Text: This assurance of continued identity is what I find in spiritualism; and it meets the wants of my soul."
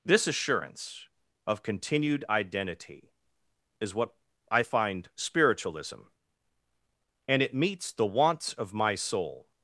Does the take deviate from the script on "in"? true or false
true